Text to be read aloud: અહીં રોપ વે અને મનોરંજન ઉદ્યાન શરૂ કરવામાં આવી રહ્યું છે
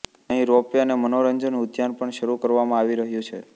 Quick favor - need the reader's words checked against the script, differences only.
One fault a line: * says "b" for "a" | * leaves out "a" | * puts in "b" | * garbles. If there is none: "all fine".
* puts in "પણ"